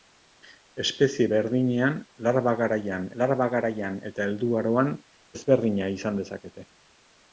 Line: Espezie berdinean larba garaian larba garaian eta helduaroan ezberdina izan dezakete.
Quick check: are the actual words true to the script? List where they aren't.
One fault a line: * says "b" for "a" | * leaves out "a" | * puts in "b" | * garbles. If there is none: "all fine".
all fine